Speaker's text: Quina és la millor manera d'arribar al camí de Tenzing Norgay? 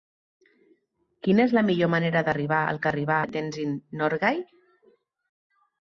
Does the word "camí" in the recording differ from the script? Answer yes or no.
yes